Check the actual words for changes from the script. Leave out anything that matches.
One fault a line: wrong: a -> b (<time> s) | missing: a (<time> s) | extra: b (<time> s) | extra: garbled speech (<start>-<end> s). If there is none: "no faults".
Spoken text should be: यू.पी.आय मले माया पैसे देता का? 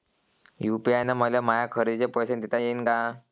extra: न (1.0 s)
extra: खरेदीचे (1.7 s)
extra: येईन (2.6 s)